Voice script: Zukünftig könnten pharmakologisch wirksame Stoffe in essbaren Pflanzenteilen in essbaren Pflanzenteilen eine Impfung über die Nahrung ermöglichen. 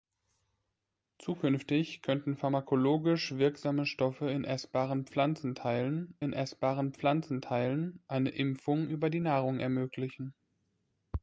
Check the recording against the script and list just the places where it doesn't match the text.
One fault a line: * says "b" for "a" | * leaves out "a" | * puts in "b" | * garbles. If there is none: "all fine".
all fine